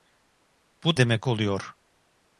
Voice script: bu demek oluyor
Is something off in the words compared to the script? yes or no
no